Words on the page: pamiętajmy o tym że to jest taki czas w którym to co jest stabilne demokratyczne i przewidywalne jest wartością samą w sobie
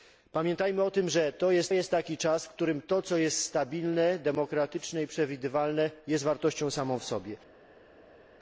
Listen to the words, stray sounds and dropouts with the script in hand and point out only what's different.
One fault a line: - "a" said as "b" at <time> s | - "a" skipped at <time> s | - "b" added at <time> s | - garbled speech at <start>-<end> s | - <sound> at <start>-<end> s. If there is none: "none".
- "jest" added at 1.7 s